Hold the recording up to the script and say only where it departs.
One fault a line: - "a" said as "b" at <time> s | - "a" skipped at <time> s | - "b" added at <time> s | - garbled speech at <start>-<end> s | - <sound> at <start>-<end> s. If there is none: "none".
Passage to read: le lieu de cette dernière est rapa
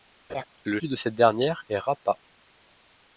- laugh at 0.3-0.4 s